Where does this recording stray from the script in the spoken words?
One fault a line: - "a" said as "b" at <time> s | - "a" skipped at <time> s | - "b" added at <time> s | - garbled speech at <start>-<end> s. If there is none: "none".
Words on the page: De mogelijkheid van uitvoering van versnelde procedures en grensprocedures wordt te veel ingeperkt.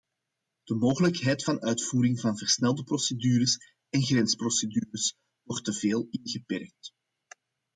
none